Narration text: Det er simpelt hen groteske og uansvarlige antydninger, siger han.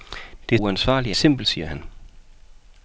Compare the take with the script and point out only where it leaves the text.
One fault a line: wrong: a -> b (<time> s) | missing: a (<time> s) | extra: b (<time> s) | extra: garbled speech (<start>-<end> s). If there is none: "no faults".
missing: simpelt hen groteske (0.6 s)
wrong: antydninger -> simpelt (1.1 s)